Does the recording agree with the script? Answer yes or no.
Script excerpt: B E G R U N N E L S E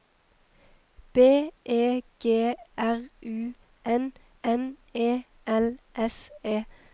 yes